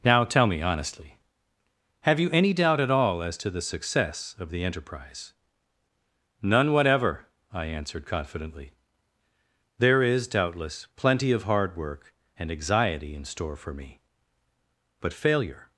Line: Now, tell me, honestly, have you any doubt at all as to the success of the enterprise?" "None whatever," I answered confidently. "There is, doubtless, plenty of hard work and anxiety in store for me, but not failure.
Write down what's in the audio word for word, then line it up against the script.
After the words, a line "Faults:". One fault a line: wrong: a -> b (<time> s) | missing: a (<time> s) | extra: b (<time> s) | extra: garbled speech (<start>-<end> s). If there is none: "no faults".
Now, tell me, honestly, have you any doubt at all as to the success of the enterprise?" "None whatever," I answered confidently. "There is, doubtless, plenty of hard work and anxiety in store for me, but failure.
Faults:
missing: not (15.1 s)